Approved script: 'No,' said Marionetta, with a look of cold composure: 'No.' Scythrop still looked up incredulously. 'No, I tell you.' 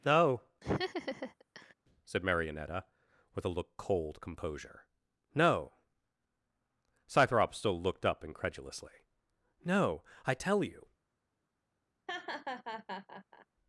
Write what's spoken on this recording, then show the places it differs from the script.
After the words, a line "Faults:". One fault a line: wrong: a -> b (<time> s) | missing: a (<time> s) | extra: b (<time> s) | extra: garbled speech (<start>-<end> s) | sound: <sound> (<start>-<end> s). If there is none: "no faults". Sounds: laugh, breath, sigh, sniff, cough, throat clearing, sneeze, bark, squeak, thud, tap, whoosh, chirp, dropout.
'No,' said Marionetta, with a look cold composure: 'No.' Scythrop still looked up incredulously. 'No, I tell you.'
Faults:
sound: laugh (0.6-1.7 s)
missing: of (3.8 s)
sound: laugh (12.1-13.5 s)